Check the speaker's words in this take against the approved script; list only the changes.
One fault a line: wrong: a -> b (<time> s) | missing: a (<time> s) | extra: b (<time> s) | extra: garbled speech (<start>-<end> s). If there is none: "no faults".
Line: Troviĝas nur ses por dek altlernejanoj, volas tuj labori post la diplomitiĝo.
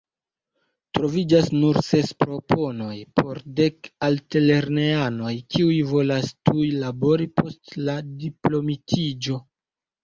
extra: proponoj (2.3 s)
extra: kiuj (5.6 s)